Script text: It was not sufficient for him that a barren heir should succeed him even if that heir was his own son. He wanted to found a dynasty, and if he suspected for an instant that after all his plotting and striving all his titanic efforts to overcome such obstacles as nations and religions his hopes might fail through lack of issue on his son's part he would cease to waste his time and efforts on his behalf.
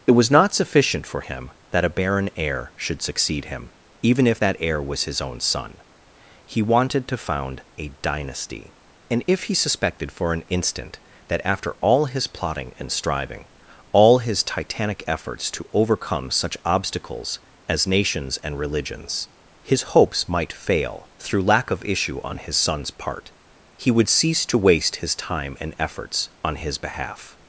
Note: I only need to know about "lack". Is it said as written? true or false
true